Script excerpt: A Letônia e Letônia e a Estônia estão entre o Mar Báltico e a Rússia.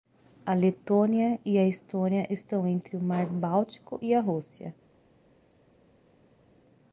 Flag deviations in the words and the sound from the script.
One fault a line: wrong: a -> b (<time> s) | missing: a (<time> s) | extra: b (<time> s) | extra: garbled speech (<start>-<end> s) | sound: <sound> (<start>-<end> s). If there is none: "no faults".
missing: Letônia e (1.6 s)